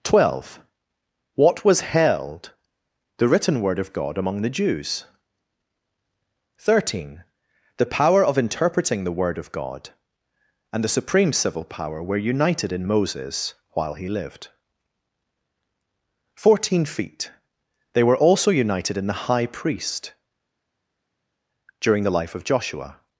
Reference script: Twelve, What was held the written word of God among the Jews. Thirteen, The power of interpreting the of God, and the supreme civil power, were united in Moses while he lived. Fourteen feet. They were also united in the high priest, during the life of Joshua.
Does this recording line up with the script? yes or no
no